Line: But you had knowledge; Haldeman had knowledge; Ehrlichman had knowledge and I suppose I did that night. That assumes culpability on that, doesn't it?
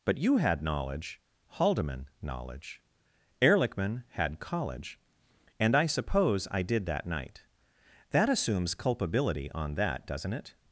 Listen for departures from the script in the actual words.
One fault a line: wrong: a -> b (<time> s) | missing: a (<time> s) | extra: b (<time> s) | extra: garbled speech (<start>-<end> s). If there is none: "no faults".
missing: had (2.1 s)
wrong: knowledge -> college (4.4 s)